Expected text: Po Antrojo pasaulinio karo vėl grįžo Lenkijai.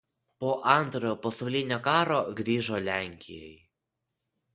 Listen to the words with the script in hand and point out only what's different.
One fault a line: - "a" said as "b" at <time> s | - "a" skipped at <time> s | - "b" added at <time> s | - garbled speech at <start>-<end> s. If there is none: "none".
- "vėl" skipped at 2.2 s